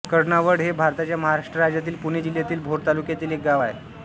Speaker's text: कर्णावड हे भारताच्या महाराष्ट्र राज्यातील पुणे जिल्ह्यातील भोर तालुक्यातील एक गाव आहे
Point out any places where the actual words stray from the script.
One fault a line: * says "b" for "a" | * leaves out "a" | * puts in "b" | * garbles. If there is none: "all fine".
all fine